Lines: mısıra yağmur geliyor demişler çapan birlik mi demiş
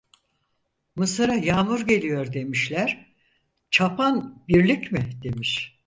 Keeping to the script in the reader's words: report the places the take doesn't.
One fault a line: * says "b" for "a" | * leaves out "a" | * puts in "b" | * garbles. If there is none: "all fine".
all fine